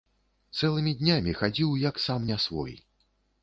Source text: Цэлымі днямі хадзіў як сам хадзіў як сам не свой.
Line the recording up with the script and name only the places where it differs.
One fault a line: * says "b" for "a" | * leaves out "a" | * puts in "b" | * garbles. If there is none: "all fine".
* leaves out "хадзіў як сам"